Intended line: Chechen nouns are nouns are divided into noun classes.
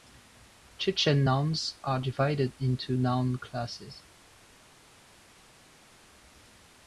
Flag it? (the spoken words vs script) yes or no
yes